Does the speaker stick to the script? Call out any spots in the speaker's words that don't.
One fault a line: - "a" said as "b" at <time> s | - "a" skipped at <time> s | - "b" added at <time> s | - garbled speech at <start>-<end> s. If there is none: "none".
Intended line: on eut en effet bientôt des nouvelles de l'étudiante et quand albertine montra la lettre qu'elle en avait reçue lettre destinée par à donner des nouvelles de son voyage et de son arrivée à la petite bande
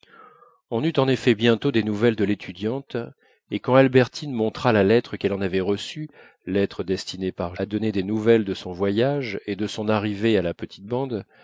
none